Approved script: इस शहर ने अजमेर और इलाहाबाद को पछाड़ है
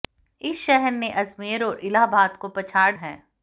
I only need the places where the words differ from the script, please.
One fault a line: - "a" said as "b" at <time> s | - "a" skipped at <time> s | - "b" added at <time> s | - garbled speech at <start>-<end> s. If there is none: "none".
none